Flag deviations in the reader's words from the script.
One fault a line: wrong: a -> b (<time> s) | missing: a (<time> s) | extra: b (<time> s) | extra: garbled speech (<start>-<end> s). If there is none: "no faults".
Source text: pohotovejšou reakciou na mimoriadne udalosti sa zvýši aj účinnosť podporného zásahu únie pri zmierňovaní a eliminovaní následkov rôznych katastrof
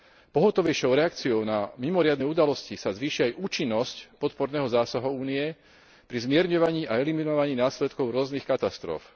no faults